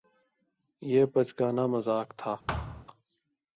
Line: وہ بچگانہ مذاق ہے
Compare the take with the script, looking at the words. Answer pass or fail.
fail